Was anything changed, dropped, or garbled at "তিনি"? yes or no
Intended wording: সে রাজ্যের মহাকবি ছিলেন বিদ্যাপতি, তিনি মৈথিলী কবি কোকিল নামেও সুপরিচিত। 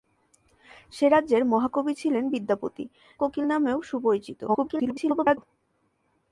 yes